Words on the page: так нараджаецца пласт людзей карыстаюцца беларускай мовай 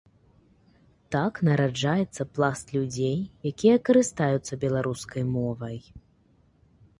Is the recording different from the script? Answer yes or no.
yes